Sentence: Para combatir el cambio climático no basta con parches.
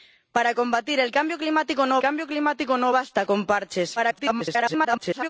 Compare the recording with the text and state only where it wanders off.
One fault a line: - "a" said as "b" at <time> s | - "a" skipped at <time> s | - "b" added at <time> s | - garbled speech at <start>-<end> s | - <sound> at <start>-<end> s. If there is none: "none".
- "cambio climático no" added at 2.0 s
- garbled speech at 4.0-5.3 s